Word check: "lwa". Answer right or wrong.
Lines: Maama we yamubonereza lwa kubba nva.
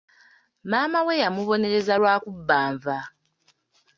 right